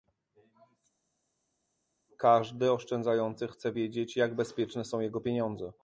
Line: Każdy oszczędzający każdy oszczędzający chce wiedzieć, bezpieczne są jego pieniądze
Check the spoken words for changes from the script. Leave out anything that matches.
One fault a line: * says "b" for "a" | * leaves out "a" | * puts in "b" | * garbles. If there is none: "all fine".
* leaves out "każdy oszczędzający"
* puts in "jak"